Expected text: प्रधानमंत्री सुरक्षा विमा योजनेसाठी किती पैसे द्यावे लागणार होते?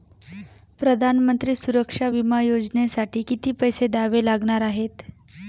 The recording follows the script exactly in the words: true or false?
false